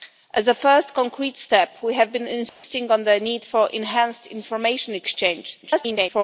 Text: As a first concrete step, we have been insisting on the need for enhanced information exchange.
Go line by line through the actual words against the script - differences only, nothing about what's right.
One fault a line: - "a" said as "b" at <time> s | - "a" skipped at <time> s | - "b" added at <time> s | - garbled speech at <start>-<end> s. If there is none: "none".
- garbled speech at 5.6-6.2 s